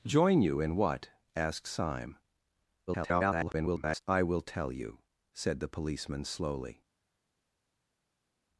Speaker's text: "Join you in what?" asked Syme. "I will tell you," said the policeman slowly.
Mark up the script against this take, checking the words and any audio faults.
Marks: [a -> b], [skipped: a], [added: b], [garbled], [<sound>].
"Join you in what?" asked Syme. [garbled] "I will tell you," said the policeman slowly.